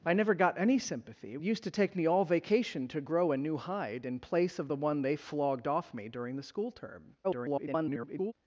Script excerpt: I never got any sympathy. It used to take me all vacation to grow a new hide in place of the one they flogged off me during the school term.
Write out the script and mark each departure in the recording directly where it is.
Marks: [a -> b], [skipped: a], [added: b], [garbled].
I never got any sympathy. [skipped: It] used to take me all vacation to grow a new hide in place of the one they flogged off me during the school term. [garbled]